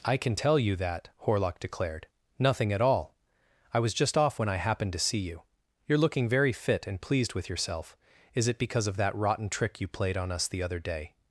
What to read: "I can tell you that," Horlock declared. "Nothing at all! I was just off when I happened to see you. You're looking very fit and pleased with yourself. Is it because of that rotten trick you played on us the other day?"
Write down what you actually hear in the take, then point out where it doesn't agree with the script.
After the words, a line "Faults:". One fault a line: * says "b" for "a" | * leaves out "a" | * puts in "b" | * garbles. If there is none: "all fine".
"I can tell you that," Horlock declared. "Nothing at all! I was just off when I happened to see you. You're looking very fit and pleased with yourself. Is it because of that rotten trick you played on us the other day?"
Faults:
all fine